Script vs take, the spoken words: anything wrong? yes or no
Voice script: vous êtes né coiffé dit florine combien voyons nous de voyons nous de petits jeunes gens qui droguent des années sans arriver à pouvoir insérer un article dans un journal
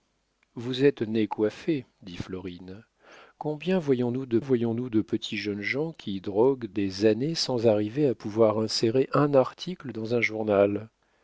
no